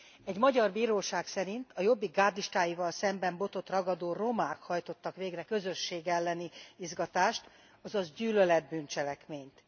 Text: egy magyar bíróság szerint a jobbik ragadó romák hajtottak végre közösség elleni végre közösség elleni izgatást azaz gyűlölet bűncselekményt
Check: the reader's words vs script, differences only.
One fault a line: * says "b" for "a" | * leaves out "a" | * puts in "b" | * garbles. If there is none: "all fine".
* puts in "gárdistáival szemben botot"
* leaves out "végre közösség elleni"